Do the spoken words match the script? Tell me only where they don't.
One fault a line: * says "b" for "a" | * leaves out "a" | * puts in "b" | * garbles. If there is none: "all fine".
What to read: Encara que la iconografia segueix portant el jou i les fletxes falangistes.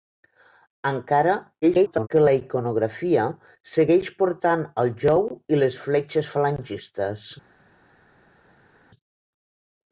* garbles